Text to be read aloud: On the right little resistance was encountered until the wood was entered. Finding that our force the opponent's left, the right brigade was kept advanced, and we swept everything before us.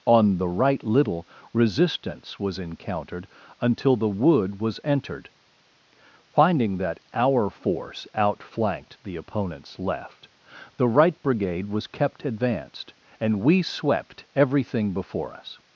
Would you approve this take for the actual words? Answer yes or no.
no